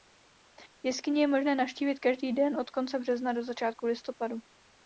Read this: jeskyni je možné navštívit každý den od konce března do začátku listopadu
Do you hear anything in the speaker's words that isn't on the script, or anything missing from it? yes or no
no